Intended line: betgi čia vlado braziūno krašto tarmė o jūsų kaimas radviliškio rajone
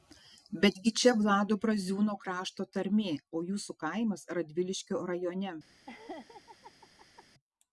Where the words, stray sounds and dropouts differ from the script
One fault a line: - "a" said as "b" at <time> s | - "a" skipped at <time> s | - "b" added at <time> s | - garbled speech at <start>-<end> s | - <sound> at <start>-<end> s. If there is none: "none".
- laugh at 5.9-7.3 s